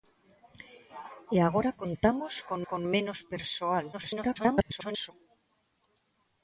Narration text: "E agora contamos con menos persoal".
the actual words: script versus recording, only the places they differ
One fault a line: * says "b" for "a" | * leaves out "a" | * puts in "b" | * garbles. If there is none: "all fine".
* puts in "con"
* garbles